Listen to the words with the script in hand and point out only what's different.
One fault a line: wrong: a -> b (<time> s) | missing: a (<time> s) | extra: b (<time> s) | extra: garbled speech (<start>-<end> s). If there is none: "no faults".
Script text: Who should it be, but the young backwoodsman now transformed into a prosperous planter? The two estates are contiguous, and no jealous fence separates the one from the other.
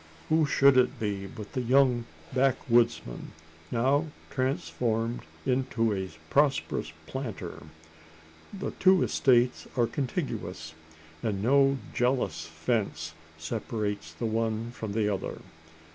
no faults